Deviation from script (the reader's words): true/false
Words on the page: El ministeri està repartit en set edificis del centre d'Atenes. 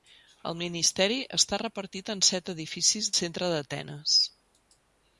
true